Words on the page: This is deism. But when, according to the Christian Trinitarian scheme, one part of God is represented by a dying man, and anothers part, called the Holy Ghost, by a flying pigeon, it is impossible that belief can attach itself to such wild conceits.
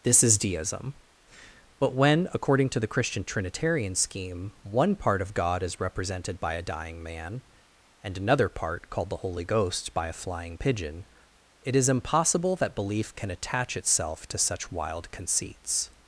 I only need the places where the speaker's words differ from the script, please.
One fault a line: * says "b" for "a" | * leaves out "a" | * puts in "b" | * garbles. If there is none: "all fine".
* says "another" for "anothers"